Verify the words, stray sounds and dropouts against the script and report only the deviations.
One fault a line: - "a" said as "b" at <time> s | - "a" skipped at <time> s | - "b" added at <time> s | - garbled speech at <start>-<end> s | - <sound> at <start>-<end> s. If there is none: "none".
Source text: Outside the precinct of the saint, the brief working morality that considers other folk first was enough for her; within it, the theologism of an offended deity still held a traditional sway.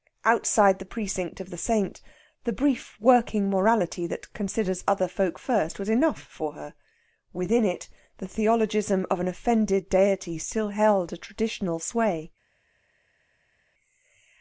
none